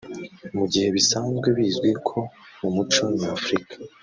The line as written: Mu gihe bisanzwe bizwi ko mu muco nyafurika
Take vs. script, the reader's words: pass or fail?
pass